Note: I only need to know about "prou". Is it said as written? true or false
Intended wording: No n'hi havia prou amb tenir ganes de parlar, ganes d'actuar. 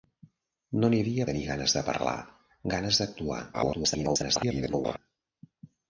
false